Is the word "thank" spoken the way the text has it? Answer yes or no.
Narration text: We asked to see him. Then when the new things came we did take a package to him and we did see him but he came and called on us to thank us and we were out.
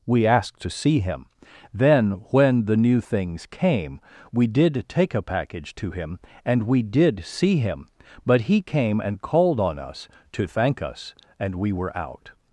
yes